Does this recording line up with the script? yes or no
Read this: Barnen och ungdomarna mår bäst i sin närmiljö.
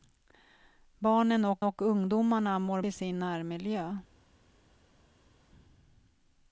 no